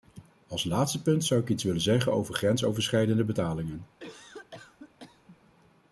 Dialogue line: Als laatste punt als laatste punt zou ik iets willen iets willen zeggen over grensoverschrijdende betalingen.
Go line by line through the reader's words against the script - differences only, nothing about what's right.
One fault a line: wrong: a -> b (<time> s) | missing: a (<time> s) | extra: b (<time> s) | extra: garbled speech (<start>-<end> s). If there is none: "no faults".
missing: als laatste punt (1.2 s)
missing: iets willen (1.8 s)